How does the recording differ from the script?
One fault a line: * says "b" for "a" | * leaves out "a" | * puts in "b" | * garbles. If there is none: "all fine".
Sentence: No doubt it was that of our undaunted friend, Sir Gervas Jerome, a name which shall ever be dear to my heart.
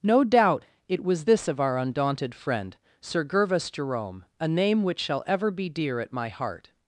* says "this" for "that"
* says "at" for "to"